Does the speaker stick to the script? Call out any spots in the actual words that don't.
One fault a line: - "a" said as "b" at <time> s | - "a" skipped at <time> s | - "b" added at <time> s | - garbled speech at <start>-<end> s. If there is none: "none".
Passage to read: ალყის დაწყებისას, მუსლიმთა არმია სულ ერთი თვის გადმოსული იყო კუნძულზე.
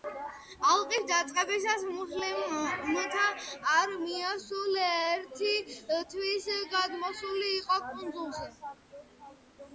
none